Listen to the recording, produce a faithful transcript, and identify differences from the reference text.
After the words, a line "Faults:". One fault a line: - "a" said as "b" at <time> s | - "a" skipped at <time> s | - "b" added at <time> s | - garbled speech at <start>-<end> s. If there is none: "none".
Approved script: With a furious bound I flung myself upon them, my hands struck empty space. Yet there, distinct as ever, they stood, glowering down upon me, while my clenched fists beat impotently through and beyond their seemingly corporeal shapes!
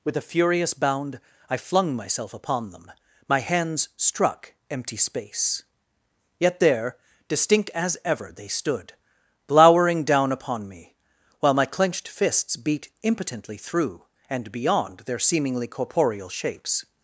With a furious bound I flung myself upon them, my hands struck empty space. Yet there, distinct as ever, they stood, glowering down upon me, while my clenched fists beat impotently through and beyond their seemingly corporeal shapes!
Faults:
none